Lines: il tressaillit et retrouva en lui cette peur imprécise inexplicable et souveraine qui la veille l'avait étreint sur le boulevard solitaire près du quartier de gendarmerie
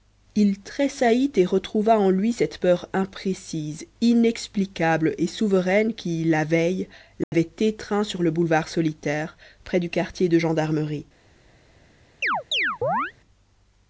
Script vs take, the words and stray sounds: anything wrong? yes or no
yes